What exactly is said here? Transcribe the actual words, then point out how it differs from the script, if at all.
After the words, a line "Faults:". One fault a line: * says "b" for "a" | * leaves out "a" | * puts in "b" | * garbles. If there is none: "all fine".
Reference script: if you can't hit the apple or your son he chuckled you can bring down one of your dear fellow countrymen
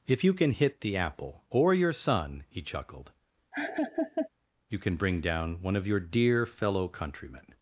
if you can hit the apple or your son he chuckled you can bring down one of your dear fellow countrymen
Faults:
* says "can" for "can't"